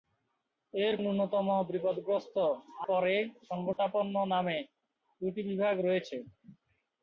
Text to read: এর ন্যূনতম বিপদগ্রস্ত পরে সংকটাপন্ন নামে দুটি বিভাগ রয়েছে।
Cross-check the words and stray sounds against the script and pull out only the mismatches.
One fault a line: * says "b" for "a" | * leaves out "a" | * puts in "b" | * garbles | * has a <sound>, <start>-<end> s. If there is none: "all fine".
* has a dropout, 3.7-3.8 s